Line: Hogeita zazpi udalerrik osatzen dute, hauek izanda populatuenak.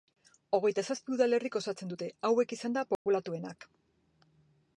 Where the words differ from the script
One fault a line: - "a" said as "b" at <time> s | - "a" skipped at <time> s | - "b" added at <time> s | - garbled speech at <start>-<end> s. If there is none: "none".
none